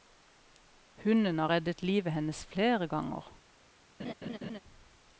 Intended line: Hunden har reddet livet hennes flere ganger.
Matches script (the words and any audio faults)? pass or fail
fail